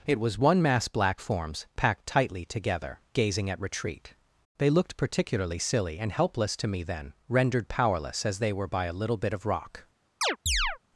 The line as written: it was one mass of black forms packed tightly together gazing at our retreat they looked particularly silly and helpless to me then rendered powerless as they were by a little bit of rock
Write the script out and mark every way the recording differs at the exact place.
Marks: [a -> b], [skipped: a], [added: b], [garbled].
it was one mass [skipped: of] black forms packed tightly together gazing at [skipped: our] retreat they looked particularly silly and helpless to me then rendered powerless as they were by a little bit of rock